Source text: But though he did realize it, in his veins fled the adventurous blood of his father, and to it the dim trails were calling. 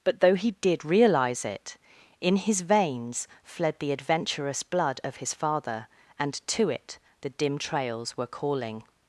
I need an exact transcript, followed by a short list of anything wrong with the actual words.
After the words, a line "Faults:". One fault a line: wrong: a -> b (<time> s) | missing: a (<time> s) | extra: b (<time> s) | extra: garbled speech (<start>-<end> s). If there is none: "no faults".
But though he did realize it, in his veins fled the adventurous blood of his father, and to it the dim trails were calling.
Faults:
no faults